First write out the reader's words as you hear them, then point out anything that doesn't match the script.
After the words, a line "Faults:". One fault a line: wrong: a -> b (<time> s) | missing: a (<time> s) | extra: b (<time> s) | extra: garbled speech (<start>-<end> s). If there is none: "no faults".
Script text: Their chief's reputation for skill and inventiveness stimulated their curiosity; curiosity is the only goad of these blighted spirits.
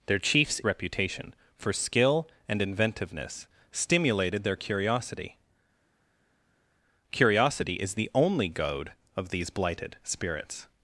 Their chief's reputation for skill and inventiveness stimulated their curiosity; curiosity is the only goad of these blighted spirits.
Faults:
no faults